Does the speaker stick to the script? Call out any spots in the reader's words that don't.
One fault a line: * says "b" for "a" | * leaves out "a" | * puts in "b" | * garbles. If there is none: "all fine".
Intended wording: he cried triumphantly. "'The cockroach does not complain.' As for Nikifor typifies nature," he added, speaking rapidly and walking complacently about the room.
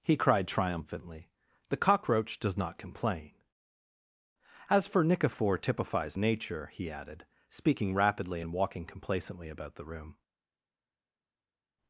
all fine